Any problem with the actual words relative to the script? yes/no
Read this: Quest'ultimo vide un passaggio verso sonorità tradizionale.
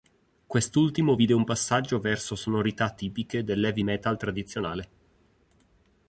yes